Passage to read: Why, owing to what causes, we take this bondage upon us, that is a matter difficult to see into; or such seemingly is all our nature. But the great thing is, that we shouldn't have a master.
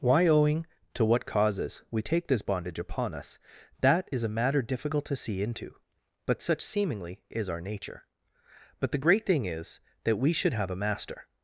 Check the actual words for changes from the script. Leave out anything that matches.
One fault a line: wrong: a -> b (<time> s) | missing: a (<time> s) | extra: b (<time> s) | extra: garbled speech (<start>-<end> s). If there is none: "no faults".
wrong: or -> but (6.3 s)
missing: all (7.5 s)
wrong: shouldn't -> should (10.3 s)